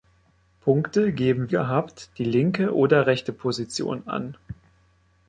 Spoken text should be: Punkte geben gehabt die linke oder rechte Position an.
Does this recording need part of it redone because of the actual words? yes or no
no